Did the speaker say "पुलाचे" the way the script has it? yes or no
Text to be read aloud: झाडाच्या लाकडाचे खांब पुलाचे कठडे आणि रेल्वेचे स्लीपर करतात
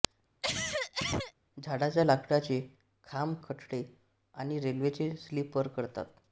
no